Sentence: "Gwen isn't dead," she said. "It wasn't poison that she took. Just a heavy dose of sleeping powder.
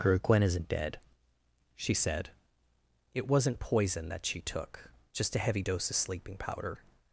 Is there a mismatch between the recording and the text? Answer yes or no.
yes